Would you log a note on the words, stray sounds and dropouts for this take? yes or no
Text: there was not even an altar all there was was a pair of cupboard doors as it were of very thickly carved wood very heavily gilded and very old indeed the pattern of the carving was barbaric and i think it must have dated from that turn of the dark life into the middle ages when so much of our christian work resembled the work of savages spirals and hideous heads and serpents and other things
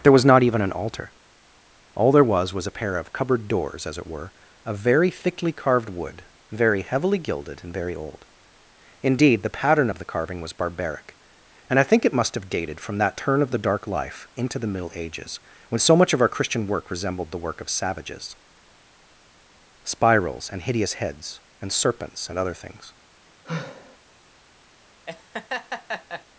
yes